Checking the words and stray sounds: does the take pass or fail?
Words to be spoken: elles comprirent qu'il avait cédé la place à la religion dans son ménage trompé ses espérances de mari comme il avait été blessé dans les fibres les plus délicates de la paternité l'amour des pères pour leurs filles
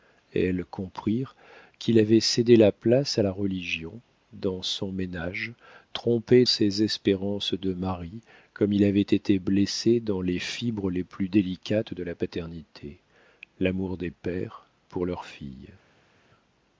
pass